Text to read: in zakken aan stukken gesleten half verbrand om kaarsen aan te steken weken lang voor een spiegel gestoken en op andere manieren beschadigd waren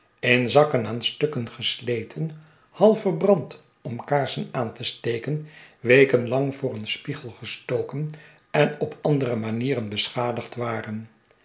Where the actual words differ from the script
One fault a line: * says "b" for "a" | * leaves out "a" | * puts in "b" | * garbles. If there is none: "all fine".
all fine